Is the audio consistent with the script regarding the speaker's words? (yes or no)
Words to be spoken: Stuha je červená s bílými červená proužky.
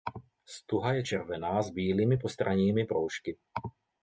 no